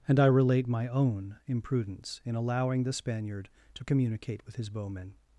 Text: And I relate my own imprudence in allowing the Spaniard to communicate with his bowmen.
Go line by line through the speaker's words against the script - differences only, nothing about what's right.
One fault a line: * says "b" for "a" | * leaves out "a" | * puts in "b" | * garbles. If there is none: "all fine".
all fine